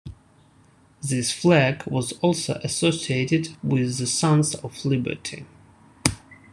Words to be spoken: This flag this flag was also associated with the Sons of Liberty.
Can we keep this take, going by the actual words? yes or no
no